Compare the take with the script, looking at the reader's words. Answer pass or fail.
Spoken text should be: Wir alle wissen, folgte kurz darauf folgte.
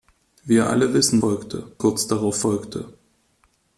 pass